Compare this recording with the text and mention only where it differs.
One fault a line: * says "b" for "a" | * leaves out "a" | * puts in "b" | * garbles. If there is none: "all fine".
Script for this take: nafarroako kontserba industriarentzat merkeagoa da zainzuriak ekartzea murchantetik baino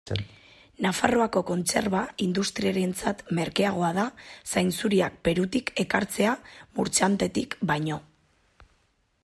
* puts in "perutik"